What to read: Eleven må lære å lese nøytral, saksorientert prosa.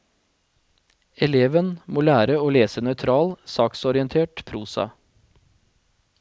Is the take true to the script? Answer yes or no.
yes